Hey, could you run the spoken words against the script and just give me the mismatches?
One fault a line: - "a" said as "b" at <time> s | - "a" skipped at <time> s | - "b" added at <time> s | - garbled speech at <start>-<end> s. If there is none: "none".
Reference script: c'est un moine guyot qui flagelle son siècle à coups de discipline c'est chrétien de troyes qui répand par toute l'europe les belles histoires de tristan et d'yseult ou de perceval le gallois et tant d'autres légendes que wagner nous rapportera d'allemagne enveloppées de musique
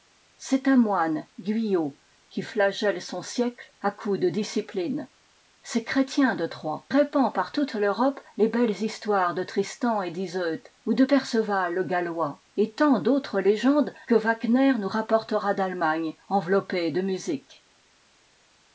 - "qui" skipped at 6.9 s